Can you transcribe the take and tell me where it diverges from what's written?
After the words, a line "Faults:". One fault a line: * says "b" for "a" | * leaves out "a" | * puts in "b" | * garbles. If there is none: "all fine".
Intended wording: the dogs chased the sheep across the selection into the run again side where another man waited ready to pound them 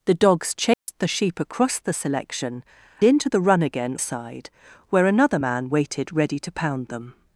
the dogs chased the sheep across the selection into the run again side where another man waited ready to pound them
Faults:
all fine